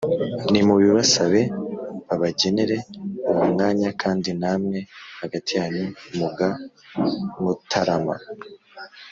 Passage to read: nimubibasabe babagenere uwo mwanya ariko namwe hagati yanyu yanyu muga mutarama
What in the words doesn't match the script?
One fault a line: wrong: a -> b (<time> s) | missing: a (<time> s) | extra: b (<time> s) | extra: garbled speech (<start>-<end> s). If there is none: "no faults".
wrong: ariko -> kandi (4.0 s)
missing: yanyu (5.9 s)